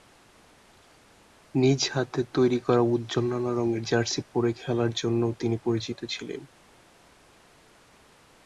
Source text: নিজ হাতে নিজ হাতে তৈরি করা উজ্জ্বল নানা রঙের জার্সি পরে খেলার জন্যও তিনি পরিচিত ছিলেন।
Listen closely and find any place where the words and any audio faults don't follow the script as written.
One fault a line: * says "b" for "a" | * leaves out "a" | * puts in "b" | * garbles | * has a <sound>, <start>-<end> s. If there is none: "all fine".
* leaves out "নিজ হাতে"